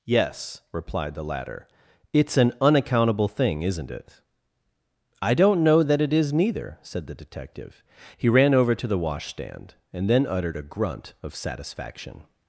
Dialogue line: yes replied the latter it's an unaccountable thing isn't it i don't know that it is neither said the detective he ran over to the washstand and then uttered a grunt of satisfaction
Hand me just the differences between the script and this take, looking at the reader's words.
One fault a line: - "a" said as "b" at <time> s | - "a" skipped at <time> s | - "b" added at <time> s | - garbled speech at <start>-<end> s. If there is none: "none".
none